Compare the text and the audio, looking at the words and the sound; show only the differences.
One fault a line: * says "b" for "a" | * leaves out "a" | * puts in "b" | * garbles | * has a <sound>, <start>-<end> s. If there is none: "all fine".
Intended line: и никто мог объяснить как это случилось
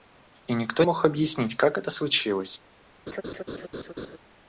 * has a laugh, 3.1-4.2 s